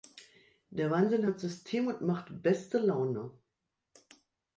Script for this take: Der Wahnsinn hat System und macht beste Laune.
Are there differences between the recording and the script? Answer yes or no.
no